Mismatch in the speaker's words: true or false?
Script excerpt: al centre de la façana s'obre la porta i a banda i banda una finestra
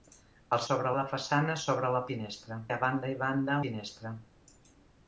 true